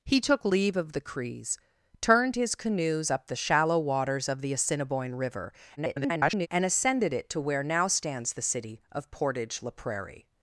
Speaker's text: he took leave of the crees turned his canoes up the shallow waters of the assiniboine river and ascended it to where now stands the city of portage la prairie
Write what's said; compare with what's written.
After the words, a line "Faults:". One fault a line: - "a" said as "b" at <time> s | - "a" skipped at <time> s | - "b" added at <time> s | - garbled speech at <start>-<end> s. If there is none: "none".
he took leave of the crees turned his canoes up the shallow waters of the assiniboine river [garbled] and ascended it to where now stands the city of portage la prairie
Faults:
- garbled speech at 5.8-6.5 s